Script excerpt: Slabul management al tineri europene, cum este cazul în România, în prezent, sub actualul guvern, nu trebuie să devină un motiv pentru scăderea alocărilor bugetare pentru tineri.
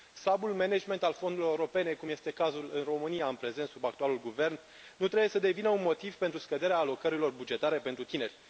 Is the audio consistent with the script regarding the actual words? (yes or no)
no